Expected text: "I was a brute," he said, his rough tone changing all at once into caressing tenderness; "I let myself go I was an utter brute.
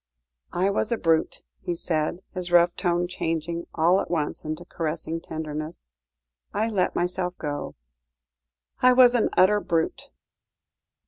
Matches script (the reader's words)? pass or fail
pass